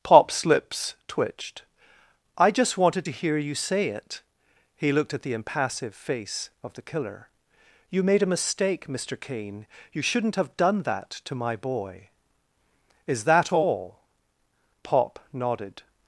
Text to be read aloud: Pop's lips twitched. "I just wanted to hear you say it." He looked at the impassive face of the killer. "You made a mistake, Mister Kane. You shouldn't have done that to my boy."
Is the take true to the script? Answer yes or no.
no